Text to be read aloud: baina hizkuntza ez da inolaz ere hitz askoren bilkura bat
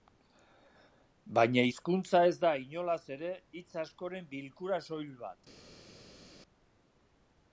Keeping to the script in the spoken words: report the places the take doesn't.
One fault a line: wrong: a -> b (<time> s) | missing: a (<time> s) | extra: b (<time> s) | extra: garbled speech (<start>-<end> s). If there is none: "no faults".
extra: soil (4.9 s)